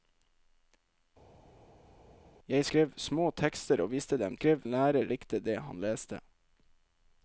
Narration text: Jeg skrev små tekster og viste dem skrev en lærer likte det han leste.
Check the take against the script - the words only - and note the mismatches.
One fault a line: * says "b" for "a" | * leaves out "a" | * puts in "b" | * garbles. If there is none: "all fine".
all fine